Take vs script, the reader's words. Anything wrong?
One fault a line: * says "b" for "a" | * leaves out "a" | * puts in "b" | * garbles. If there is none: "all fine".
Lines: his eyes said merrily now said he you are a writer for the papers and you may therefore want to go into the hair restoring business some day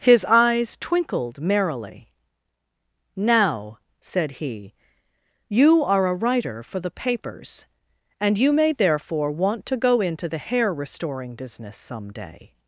* says "twinkled" for "said"